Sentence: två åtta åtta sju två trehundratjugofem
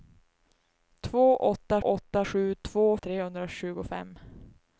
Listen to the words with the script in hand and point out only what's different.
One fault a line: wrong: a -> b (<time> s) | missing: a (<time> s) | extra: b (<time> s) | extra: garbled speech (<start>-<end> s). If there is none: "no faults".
no faults